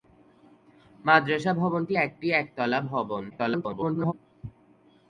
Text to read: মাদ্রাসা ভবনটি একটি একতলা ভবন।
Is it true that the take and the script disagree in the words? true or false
true